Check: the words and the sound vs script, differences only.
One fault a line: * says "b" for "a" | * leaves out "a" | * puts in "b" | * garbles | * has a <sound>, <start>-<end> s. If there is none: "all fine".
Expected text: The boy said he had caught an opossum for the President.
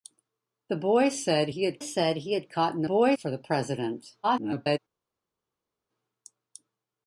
* puts in "said he had"
* says "boy" for "opossum"
* garbles